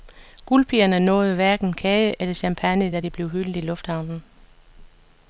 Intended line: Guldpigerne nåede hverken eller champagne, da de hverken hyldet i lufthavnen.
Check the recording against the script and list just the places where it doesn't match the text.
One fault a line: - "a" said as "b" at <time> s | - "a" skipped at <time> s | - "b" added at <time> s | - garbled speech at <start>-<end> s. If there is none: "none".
- "kage" added at 1.7 s
- "hverken" said as "blev" at 3.1 s